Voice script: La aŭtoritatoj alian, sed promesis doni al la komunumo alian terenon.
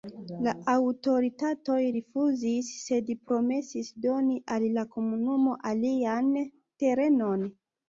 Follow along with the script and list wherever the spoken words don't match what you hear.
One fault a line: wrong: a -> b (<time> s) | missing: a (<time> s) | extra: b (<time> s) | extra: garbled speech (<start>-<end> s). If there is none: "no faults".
wrong: alian -> rifuzis (1.9 s)